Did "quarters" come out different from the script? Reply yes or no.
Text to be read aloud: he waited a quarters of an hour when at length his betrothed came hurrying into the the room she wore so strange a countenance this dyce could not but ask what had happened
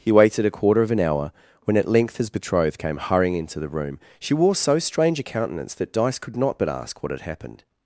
yes